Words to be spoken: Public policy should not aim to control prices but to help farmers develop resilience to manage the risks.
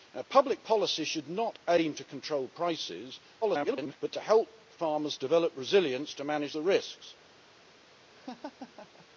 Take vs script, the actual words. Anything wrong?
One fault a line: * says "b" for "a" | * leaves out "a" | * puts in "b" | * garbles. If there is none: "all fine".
* garbles